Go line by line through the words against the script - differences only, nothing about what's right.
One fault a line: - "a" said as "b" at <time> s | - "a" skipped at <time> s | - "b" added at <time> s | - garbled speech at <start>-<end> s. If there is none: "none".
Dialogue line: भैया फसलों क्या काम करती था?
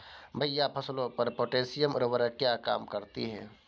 - "पर पोटैशियम उर्वरक" added at 1.1 s
- "था" said as "है" at 3.3 s